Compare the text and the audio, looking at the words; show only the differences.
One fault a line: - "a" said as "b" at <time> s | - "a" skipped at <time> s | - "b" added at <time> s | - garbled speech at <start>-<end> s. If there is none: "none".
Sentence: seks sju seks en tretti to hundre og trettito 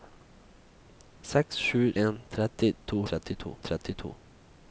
- "seks" skipped at 1.8 s
- "hundre" said as "trettito" at 3.1 s